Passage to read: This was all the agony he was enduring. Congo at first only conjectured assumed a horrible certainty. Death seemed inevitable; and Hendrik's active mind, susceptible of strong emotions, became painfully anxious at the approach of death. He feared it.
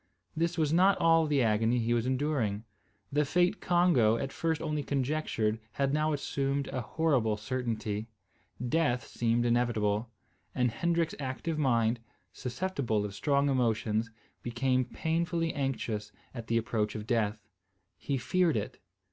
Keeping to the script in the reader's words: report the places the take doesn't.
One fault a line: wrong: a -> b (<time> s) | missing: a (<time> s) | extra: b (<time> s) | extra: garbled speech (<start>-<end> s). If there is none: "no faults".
extra: not (0.7 s)
extra: The fate (3.1 s)
extra: had now (5.7 s)